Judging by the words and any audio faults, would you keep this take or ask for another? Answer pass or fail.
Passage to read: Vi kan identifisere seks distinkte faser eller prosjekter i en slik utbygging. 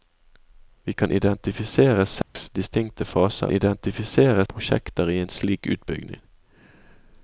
fail